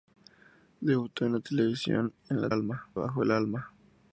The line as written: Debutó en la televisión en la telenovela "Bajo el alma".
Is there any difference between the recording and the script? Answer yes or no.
yes